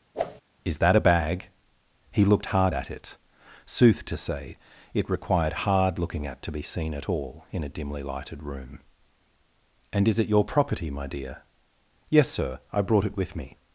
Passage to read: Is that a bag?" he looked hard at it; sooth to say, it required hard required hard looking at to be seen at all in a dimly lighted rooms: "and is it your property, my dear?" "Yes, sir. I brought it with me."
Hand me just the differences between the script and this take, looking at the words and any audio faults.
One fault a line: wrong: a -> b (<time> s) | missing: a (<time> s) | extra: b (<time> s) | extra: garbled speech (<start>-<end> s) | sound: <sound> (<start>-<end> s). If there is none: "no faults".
sound: whoosh (0.1-0.4 s)
missing: required hard (6.0 s)
wrong: rooms -> room (8.4 s)